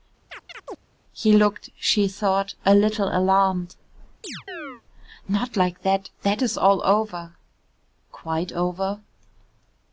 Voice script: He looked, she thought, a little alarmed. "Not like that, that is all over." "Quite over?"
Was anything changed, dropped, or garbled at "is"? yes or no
no